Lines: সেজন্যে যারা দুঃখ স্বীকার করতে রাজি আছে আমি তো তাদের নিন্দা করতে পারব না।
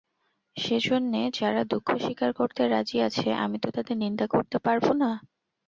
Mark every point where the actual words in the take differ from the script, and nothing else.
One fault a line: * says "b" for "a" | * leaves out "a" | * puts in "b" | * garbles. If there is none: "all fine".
all fine